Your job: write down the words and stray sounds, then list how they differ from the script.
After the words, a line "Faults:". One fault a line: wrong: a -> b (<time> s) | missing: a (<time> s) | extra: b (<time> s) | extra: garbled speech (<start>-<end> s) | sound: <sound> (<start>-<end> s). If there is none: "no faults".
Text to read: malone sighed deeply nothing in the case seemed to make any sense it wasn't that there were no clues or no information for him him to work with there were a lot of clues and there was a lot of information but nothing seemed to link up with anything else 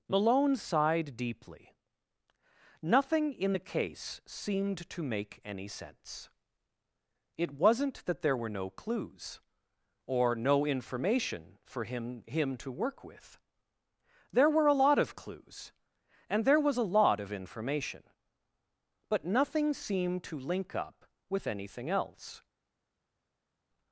malone sighed deeply nothing in the case seemed to make any sense it wasn't that there were no clues or no information for him him to work with there were a lot of clues and there was a lot of information but nothing seemed to link up with anything else
Faults:
no faults